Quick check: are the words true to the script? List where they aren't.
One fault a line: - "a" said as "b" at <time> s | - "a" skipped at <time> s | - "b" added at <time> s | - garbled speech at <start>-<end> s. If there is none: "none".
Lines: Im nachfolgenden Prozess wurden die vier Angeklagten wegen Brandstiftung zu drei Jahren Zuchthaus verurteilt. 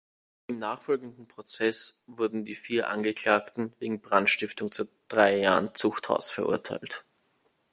none